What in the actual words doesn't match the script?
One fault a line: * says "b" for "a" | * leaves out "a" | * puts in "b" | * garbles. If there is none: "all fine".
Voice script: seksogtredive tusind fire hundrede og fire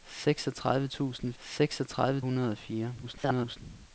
* says "seksogtredive" for "fire"
* garbles